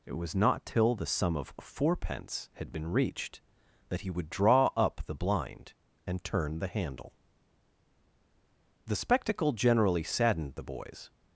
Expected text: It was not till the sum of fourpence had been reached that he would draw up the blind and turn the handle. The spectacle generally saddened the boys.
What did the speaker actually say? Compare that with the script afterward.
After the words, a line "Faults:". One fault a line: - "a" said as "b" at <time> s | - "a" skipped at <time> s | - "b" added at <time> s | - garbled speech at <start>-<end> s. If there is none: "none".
It was not till the sum of fourpence had been reached that he would draw up the blind and turn the handle. The spectacle generally saddened the boys.
Faults:
none